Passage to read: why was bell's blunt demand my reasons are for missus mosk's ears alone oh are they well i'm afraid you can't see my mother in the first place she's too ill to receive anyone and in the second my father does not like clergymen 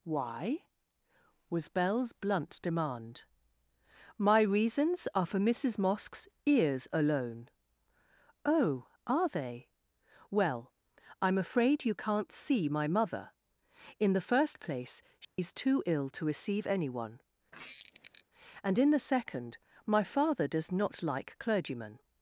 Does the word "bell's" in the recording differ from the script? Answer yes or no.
no